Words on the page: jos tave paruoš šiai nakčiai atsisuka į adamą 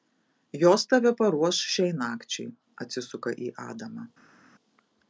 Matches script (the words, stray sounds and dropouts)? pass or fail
pass